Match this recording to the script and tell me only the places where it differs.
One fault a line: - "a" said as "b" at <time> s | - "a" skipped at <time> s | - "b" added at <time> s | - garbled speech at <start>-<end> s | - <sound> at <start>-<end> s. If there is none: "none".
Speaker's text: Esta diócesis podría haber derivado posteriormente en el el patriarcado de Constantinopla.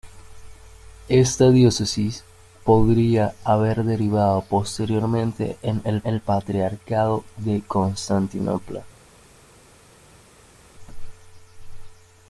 none